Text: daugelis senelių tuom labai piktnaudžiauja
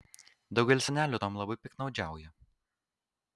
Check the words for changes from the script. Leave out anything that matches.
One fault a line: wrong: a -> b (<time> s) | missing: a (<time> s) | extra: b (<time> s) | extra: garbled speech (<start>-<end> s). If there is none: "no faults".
no faults